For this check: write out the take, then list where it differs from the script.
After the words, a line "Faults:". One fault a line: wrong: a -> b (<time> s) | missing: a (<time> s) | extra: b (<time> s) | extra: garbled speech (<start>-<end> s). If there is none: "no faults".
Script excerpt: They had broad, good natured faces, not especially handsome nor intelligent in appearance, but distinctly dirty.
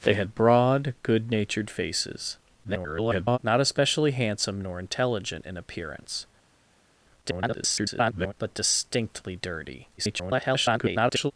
They had broad, good natured faces, [garbled] not especially handsome nor intelligent in appearance, [garbled] but distinctly dirty. [garbled]
Faults:
extra: garbled speech (2.6-3.4 s)
extra: garbled speech (7.2-8.3 s)
extra: garbled speech (10.0-11.3 s)